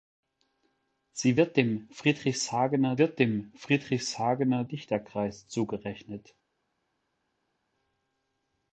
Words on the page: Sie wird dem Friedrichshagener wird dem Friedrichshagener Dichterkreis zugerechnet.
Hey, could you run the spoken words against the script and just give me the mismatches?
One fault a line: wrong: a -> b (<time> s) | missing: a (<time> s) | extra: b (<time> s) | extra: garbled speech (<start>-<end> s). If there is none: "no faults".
no faults